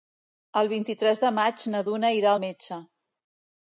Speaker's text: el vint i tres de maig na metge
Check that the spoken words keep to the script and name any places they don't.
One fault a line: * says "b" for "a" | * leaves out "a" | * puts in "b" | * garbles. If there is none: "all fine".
* puts in "duna irà al"